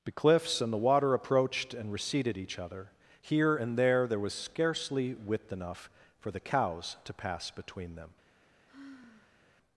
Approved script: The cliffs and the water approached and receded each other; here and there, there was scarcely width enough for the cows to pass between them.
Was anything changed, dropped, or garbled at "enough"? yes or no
no